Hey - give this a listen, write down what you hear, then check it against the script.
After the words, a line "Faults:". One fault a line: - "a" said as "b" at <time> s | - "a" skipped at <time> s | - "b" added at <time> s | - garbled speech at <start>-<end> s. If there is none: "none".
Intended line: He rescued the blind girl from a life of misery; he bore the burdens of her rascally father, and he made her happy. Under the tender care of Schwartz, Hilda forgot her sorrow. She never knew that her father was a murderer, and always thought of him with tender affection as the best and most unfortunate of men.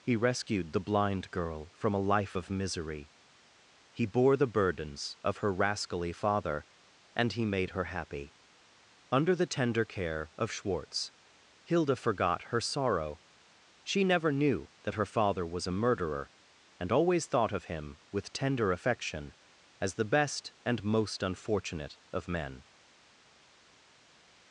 He rescued the blind girl from a life of misery; he bore the burdens of her rascally father, and he made her happy. Under the tender care of Schwartz, Hilda forgot her sorrow. She never knew that her father was a murderer, and always thought of him with tender affection as the best and most unfortunate of men.
Faults:
none